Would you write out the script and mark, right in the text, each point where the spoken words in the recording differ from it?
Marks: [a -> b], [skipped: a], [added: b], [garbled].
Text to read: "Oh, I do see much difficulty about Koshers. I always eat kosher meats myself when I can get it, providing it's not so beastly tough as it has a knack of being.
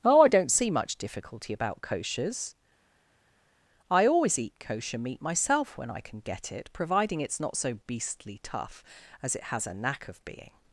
"Oh, I [do -> don't] see much difficulty about Koshers. I always eat kosher [meats -> meat] myself when I can get it, providing it's not so beastly tough as it has a knack of being.